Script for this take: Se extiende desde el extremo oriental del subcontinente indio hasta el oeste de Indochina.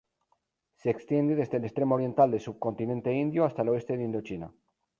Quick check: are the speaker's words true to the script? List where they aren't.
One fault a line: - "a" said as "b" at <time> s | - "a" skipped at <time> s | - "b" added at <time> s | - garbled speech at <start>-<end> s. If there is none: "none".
none